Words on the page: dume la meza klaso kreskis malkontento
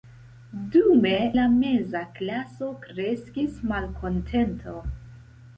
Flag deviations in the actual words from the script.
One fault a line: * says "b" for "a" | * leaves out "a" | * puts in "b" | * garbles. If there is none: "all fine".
all fine